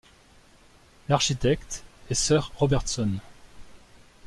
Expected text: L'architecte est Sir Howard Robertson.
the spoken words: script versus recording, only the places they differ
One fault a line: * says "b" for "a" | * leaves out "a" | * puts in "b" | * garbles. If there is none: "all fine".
* leaves out "Howard"